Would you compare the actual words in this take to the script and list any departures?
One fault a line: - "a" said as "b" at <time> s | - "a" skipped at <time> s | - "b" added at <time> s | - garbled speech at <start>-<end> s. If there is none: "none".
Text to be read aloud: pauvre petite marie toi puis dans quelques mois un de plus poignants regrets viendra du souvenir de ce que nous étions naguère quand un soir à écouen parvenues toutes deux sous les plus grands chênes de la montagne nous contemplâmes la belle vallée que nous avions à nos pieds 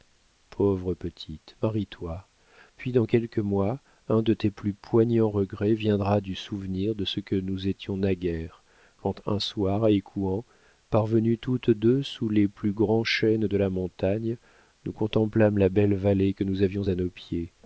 - "tes" added at 4.3 s